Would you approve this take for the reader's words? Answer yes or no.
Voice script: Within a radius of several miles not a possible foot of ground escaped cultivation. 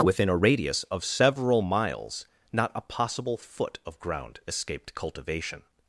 yes